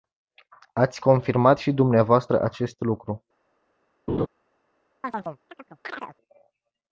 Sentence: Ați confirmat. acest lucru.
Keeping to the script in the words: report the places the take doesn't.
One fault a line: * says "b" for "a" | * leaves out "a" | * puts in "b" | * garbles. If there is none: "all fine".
* puts in "și dvs"